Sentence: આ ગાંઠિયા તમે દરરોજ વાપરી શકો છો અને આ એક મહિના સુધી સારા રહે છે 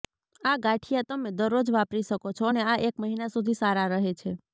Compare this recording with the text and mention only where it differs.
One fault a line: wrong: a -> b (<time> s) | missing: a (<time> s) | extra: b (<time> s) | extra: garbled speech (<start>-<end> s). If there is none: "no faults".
no faults